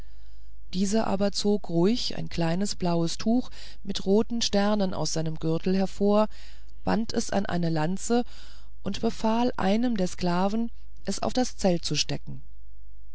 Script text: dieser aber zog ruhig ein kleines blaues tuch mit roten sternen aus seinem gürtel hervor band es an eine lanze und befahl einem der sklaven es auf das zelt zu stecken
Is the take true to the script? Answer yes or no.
yes